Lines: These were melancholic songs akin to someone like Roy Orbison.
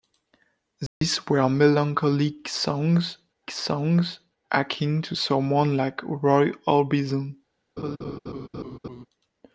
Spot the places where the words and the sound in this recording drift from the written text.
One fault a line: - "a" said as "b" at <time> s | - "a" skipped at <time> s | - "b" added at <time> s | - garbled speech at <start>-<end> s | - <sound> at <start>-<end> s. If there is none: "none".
- dropout at 0.9-1.0 s
- "songs" added at 3.5 s
- laugh at 7.8-9.1 s